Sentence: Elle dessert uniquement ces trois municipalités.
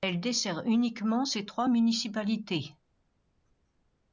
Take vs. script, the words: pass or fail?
pass